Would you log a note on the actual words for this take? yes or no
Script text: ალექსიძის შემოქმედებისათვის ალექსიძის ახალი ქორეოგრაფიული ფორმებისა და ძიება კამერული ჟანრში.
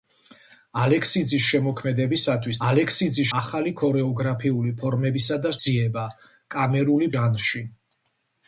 no